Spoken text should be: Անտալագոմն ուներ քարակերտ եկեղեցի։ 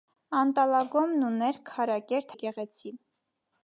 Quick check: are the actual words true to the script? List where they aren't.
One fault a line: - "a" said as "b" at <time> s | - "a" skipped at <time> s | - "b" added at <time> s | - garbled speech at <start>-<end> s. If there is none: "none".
none